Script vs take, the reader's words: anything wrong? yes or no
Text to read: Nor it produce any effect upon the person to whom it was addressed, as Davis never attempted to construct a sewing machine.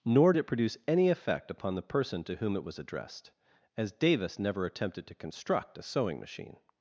no